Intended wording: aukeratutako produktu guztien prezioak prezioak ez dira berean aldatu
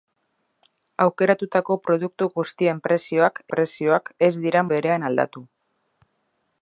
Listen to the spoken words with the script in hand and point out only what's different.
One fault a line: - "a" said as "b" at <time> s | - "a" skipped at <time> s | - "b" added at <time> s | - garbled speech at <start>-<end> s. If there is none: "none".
none